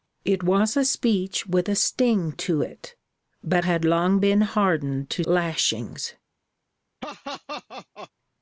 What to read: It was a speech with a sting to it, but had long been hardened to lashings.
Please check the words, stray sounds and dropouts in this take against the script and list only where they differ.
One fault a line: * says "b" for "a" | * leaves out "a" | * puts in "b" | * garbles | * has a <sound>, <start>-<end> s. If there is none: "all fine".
* has a laugh, 7.0-8.1 s